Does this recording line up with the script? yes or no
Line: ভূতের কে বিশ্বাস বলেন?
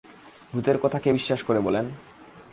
no